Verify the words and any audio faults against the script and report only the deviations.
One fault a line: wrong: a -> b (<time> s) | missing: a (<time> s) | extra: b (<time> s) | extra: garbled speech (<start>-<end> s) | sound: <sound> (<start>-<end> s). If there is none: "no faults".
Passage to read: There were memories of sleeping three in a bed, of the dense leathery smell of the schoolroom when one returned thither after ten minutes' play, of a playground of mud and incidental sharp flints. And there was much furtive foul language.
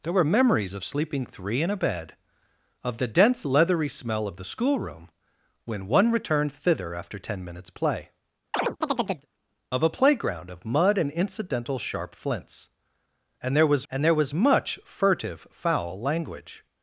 sound: chirp (8.5-9.3 s)
extra: and there was (13.9 s)